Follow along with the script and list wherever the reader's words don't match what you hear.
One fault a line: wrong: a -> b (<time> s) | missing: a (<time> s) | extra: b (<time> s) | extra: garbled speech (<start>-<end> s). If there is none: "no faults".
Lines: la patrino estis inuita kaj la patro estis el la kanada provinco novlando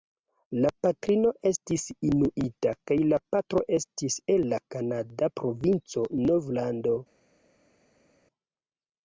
no faults